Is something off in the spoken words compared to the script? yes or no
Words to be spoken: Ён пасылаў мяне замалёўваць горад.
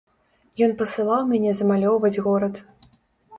no